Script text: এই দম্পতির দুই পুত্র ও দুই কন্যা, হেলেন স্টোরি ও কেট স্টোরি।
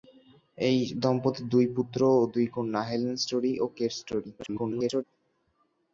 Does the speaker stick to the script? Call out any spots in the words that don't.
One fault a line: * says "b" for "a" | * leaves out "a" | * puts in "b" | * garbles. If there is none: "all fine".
* garbles